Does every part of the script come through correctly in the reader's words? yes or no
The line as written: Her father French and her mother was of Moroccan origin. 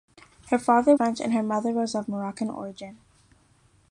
yes